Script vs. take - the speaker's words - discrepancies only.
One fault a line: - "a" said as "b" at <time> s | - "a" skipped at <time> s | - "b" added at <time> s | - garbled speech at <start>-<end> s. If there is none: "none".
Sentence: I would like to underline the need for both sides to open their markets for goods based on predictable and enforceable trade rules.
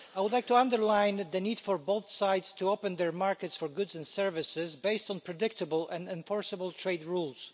- "and services" added at 3.9 s